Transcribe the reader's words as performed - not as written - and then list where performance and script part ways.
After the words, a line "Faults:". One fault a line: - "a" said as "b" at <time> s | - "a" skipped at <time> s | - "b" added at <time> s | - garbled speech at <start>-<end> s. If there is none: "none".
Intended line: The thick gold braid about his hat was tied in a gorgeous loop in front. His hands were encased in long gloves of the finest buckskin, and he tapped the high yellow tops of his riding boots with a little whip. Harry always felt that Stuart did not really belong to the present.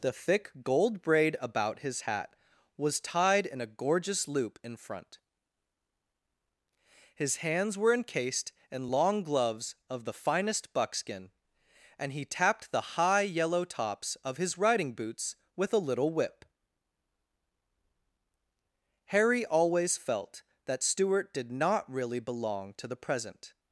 The thick gold braid about his hat was tied in a gorgeous loop in front. His hands were encased in long gloves of the finest buckskin, and he tapped the high yellow tops of his riding boots with a little whip. Harry always felt that Stuart did not really belong to the present.
Faults:
none